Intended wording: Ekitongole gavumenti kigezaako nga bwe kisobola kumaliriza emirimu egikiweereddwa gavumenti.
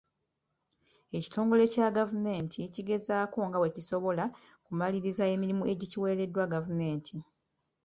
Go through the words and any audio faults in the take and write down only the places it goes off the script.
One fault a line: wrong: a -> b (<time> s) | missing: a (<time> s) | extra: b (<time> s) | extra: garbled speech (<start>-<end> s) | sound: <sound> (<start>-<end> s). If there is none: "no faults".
extra: kya (1.7 s)